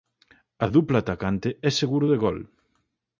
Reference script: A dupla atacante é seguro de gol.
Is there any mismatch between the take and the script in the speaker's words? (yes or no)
no